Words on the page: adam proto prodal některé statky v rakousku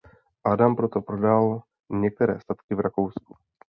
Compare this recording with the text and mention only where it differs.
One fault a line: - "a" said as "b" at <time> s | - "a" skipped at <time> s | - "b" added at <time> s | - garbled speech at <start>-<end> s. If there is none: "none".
none